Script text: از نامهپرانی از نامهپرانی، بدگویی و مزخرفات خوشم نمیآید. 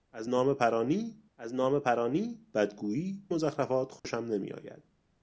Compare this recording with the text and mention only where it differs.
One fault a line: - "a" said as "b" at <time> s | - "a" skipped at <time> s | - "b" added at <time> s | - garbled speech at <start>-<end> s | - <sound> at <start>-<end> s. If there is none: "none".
- dropout at 4.0-4.0 s